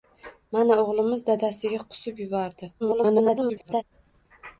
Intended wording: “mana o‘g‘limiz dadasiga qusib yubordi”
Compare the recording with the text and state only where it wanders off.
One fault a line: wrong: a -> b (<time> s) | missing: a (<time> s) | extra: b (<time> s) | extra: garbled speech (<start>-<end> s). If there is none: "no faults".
extra: garbled speech (2.8-3.8 s)